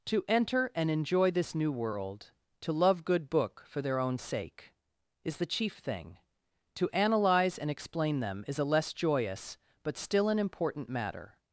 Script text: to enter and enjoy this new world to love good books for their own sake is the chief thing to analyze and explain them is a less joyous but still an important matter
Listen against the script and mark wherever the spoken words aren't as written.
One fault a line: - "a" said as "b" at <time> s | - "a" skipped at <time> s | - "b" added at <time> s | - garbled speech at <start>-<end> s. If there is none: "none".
- "books" said as "book" at 3.3 s